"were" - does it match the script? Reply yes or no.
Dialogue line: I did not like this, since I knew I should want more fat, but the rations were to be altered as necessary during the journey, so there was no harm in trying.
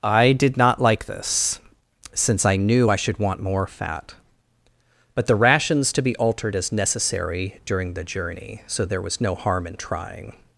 no